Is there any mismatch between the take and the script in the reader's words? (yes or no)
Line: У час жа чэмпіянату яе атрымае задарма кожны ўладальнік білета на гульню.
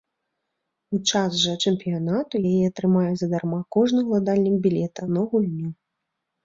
no